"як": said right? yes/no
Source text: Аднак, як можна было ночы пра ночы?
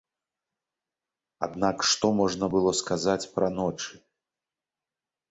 no